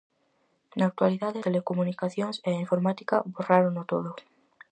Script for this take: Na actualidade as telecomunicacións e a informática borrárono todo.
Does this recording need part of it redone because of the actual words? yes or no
yes